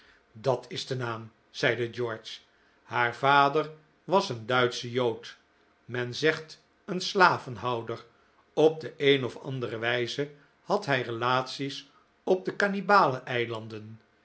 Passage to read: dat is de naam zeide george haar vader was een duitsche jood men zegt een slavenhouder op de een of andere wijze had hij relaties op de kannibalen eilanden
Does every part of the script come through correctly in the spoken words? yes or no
yes